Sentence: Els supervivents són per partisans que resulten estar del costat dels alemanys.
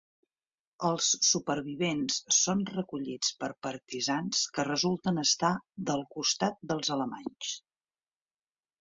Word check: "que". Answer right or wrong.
right